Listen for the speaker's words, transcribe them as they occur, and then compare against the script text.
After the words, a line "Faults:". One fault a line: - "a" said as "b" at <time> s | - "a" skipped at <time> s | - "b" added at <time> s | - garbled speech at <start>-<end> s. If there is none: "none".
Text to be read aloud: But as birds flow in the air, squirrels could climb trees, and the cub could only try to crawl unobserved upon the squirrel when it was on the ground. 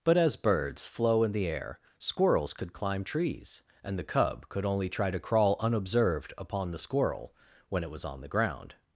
But as birds flow in the air, squirrels could climb trees, and the cub could only try to crawl unobserved upon the squirrel when it was on the ground.
Faults:
none